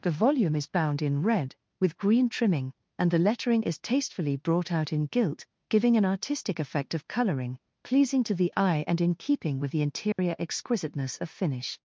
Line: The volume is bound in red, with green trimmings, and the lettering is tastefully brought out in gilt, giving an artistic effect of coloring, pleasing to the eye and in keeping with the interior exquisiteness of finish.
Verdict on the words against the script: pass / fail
fail